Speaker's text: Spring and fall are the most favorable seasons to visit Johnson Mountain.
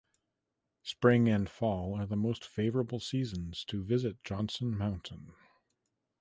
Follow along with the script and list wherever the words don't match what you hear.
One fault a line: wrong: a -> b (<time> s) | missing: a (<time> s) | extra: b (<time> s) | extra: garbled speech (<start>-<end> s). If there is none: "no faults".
no faults